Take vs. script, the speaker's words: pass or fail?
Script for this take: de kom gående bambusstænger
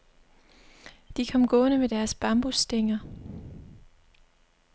fail